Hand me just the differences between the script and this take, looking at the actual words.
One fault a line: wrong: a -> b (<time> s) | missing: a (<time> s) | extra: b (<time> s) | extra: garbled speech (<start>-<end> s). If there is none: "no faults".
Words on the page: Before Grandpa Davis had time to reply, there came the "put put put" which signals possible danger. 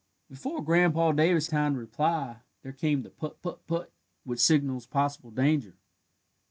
missing: had (1.4 s)